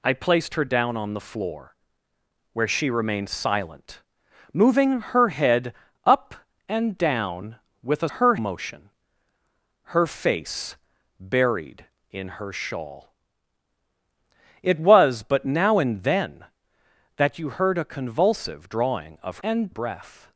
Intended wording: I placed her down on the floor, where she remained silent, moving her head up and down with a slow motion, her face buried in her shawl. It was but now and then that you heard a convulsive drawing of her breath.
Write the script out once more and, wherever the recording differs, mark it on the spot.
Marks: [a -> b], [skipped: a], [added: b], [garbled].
I placed her down on the floor, where she remained silent, moving her head up and down with a [slow -> her] motion, her face buried in her shawl. It was but now and then that you heard a convulsive drawing of [her -> and] breath.